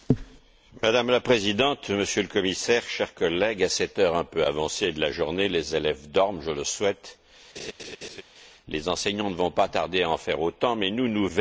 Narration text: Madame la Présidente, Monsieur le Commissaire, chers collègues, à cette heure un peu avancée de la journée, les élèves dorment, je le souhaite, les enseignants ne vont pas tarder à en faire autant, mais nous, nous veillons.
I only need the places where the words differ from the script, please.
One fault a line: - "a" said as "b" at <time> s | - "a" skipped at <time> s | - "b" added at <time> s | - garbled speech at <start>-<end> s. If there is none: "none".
none